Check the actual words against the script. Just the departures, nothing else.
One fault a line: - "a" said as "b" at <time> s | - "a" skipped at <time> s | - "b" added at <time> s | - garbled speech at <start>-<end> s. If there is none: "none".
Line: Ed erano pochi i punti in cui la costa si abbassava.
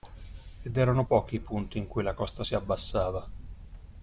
none